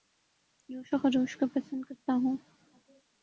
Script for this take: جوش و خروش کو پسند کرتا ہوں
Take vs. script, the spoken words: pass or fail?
pass